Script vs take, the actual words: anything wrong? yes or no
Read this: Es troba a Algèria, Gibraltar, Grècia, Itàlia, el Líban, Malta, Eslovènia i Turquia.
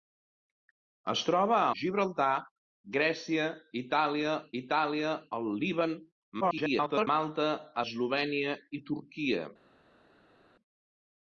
yes